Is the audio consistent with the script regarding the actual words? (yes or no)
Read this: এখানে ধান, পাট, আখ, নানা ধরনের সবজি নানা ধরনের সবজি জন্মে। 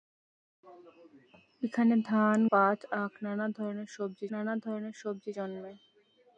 yes